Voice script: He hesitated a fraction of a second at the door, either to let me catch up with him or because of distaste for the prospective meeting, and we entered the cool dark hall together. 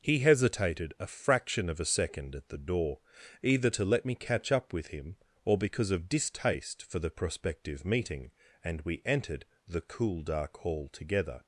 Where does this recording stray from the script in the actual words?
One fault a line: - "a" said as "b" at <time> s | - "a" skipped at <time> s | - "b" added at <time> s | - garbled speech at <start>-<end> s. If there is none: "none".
none